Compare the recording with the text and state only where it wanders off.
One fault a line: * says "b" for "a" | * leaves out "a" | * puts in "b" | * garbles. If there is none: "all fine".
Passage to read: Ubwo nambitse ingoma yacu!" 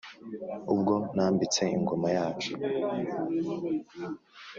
all fine